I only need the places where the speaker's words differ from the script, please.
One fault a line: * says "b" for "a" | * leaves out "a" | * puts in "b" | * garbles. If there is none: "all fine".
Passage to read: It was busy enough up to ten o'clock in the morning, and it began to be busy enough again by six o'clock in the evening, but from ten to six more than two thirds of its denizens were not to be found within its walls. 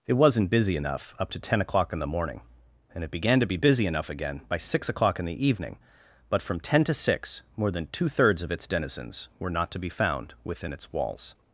* says "wasn't" for "was"